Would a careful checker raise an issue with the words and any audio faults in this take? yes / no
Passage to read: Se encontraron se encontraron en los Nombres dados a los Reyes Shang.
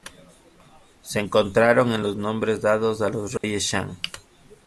yes